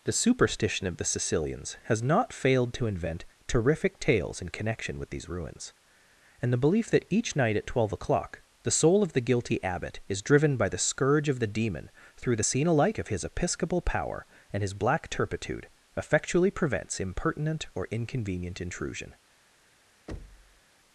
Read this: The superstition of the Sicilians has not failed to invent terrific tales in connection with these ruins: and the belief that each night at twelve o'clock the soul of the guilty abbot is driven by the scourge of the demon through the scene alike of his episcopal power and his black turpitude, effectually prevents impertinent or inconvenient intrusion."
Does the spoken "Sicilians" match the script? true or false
true